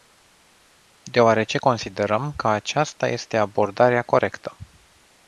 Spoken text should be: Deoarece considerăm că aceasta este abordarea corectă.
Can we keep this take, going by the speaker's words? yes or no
yes